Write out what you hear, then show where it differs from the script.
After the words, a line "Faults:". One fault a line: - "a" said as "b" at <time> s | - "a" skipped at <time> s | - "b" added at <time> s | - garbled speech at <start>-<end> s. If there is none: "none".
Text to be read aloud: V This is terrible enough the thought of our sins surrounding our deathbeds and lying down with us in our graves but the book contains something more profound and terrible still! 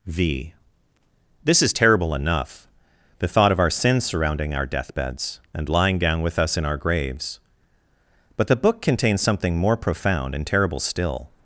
V This is terrible enough the thought of our sins surrounding our deathbeds and lying down with us in our graves but the book contains something more profound and terrible still!
Faults:
none